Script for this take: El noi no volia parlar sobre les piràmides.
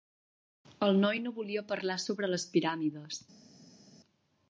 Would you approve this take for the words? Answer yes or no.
yes